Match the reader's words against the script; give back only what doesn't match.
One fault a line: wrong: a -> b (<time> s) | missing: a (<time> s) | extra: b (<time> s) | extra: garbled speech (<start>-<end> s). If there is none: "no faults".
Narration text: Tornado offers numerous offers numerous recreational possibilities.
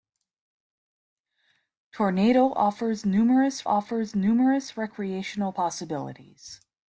no faults